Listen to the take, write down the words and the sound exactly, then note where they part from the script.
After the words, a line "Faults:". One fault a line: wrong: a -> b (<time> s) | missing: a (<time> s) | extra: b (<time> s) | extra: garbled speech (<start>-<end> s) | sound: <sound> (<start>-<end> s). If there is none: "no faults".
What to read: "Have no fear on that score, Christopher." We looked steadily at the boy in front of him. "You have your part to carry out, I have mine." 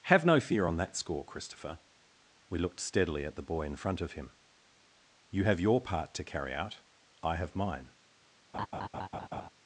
"Have no fear on that score, Christopher." We looked steadily at the boy in front of him. "You have your part to carry out, I have mine."
Faults:
sound: laugh (8.5-9.5 s)